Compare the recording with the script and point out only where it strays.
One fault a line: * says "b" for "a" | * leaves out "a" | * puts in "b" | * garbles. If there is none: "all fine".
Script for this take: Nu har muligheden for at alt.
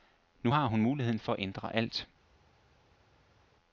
* puts in "hun"
* puts in "ændre"